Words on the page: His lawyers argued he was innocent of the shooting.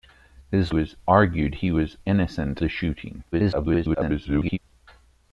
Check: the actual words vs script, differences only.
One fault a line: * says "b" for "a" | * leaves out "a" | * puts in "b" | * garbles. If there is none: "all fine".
* says "was" for "lawyers"
* leaves out "of"
* garbles